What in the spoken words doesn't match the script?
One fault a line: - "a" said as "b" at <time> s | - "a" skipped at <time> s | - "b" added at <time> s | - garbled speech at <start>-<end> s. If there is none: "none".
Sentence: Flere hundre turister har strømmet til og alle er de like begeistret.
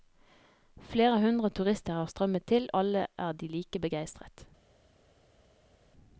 - "og" skipped at 2.7 s